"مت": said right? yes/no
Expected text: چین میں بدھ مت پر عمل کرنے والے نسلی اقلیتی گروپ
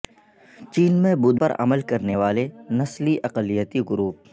no